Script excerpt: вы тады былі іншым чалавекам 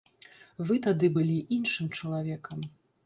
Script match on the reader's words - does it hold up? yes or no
yes